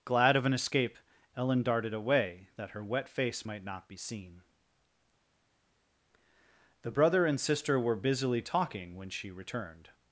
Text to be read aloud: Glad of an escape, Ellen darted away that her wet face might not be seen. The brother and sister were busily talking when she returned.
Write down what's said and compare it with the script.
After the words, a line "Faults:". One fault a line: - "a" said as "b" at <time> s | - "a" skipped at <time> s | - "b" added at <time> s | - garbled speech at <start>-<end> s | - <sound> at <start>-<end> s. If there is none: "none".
Glad of an escape, Ellen darted away that her wet face might not be seen. The brother and sister were busily talking when she returned.
Faults:
none